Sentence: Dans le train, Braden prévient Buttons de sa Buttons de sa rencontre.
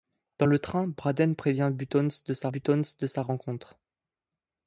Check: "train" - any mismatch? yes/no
no